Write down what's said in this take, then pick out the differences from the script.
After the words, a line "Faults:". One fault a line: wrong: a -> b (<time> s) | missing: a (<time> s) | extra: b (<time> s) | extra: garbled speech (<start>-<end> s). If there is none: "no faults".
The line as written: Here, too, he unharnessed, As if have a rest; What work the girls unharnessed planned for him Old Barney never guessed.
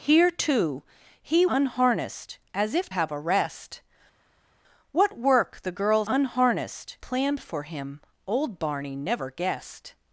Here, too, he unharnessed, As if have a rest; What work the girls unharnessed planned for him Old Barney never guessed.
Faults:
no faults